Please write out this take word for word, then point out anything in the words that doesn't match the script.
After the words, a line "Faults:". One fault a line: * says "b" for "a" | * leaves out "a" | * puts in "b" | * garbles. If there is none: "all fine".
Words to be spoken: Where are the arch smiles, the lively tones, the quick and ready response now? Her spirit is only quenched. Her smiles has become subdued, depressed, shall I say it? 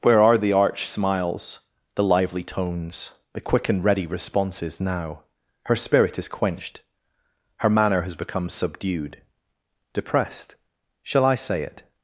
Where are the arch smiles, the lively tones, the quick and ready responses now? Her spirit is quenched. Her manner has become subdued, depressed, shall I say it?
Faults:
* says "responses" for "response"
* leaves out "only"
* says "manner" for "smiles"